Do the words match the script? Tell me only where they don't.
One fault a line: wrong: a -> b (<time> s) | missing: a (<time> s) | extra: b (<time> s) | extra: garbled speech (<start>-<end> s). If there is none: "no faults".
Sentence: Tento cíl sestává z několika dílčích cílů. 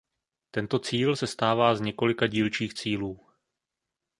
no faults